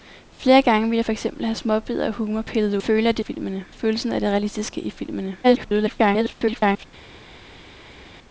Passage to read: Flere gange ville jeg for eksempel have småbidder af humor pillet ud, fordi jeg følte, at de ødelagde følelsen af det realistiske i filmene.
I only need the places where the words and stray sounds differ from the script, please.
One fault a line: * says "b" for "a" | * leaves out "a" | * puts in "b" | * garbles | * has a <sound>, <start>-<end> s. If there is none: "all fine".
* leaves out "ud fordi jeg"
* says "filmene" for "ødelagde"
* garbles